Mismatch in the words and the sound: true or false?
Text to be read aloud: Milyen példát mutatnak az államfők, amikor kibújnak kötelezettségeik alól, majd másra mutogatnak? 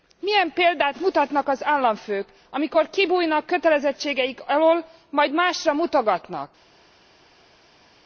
false